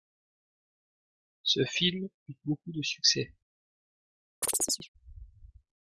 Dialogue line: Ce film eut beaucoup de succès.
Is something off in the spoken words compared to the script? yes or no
no